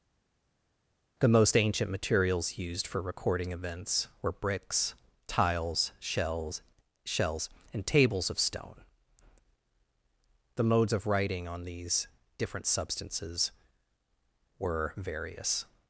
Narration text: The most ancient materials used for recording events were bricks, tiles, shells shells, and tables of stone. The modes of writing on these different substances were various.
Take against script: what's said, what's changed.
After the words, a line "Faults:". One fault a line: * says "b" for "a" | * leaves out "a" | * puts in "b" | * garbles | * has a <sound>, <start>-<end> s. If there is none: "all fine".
The most ancient materials used for recording events were bricks, tiles, shells shells, and tables of stone. The modes of writing on these different substances were various.
Faults:
all fine